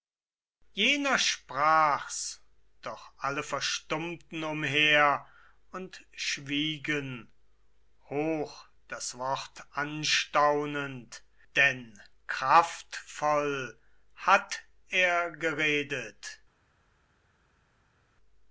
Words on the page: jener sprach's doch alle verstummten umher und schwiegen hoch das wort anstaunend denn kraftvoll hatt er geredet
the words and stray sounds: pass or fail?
pass